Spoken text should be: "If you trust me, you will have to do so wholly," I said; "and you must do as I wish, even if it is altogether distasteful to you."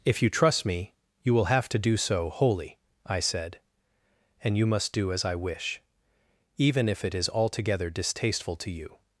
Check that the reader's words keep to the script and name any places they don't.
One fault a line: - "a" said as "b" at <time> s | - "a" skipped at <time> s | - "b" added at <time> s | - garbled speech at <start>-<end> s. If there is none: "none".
none